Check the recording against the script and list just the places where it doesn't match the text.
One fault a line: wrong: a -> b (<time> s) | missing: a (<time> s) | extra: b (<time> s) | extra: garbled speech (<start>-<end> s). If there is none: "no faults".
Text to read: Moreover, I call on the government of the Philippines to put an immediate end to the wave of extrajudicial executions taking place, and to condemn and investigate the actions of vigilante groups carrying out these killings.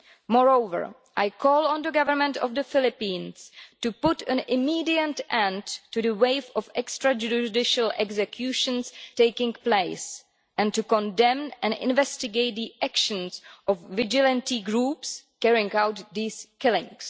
no faults